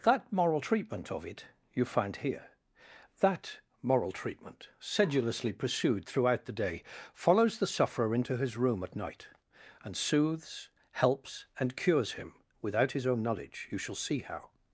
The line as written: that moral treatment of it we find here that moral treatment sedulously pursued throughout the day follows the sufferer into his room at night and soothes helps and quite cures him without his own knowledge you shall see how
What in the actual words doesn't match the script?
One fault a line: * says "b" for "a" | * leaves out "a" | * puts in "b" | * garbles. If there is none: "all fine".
* says "you" for "we"
* leaves out "quite"